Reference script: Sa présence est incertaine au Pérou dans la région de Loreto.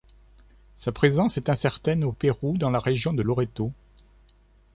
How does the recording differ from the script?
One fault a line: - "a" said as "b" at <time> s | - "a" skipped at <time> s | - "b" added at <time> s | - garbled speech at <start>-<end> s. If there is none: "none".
none